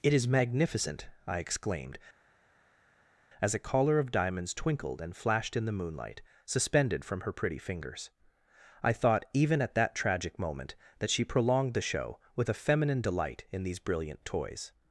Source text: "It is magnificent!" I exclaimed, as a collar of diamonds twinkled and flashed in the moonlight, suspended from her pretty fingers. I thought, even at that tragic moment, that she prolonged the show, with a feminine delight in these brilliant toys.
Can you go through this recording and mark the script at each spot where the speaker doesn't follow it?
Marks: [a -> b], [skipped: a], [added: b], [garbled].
"It is magnificent!" I exclaimed, as a collar of diamonds twinkled and flashed in the moonlight, suspended from her pretty fingers. I thought, even at that tragic moment, that she prolonged the show, with a feminine delight in these brilliant toys.